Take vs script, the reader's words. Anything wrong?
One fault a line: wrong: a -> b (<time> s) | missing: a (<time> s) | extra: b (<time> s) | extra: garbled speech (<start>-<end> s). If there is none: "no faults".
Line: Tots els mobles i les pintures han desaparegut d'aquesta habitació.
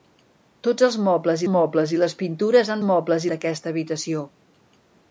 extra: mobles (1.5 s)
wrong: desaparegut -> mobles (2.9 s)